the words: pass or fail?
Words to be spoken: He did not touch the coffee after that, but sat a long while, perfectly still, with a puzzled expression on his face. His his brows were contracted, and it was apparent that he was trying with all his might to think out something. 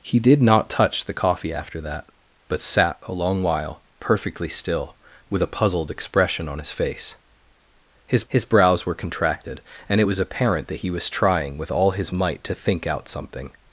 pass